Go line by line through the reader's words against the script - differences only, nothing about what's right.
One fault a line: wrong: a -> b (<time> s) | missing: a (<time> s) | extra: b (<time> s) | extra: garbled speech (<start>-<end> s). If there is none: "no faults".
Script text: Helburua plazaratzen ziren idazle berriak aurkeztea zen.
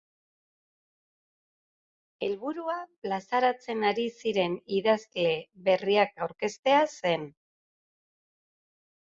extra: ari (3.9 s)